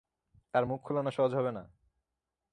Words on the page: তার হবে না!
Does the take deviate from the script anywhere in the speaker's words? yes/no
yes